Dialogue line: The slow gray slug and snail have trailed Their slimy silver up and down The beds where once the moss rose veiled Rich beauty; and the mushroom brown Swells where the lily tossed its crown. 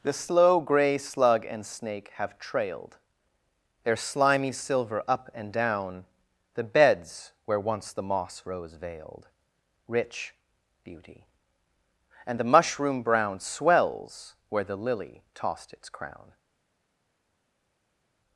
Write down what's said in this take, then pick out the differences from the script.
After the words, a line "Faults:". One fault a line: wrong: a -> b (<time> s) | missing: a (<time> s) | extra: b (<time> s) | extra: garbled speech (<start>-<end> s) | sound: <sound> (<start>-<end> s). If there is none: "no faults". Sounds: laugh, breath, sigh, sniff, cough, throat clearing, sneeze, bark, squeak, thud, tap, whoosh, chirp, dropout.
The slow gray slug and snake have trailed Their slimy silver up and down The beds where once the moss rose veiled Rich beauty; and the mushroom brown Swells where the lily tossed its crown.
Faults:
wrong: snail -> snake (1.6 s)